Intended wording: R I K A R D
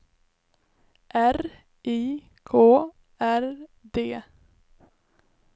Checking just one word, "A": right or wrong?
wrong